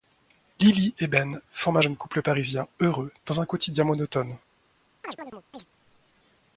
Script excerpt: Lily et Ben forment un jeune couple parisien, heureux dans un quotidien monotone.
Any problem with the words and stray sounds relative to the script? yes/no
yes